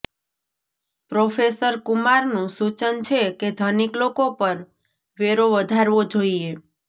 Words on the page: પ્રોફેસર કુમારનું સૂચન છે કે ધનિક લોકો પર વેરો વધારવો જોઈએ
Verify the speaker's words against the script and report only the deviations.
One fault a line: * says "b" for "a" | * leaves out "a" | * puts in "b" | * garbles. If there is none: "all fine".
all fine